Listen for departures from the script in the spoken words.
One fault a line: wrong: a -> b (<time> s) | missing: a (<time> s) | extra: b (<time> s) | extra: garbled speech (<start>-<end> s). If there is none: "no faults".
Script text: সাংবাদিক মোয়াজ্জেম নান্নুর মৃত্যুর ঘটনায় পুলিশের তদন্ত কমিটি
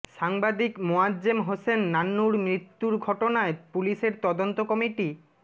extra: হোসেন (1.4 s)